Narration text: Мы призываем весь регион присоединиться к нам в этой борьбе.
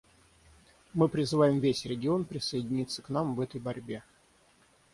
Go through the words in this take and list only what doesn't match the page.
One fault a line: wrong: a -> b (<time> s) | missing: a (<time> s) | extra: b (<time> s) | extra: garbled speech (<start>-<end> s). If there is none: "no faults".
no faults